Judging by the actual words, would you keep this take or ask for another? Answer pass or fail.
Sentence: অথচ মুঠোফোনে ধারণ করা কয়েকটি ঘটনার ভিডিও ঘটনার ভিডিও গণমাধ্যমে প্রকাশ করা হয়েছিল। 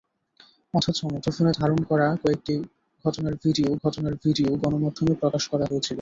pass